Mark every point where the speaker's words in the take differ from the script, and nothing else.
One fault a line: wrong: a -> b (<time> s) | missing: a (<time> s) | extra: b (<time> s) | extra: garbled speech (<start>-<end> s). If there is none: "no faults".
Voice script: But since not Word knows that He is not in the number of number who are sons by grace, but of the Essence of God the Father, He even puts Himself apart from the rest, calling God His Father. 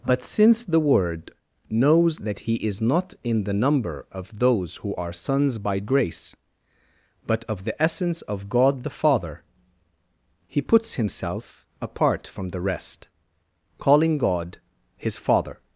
wrong: not -> the (0.7 s)
wrong: number -> those (4.4 s)
missing: even (10.6 s)